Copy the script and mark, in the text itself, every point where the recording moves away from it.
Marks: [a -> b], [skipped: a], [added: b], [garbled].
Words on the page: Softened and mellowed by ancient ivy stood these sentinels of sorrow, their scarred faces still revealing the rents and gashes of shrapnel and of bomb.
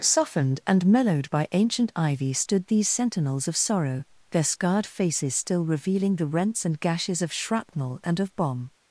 Softened and mellowed by ancient ivy stood these sentinels of sorrow, their scarred faces still revealing the rents and gashes of shrapnel and of bomb.